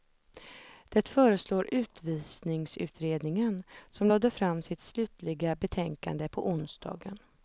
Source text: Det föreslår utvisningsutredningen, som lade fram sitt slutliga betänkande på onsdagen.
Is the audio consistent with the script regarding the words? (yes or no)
yes